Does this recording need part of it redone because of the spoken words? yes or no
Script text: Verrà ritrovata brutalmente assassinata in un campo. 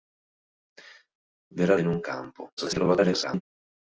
yes